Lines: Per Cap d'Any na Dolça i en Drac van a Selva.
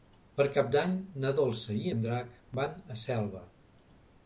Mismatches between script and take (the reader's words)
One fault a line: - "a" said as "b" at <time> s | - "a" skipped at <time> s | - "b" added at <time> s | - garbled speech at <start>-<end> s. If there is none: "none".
none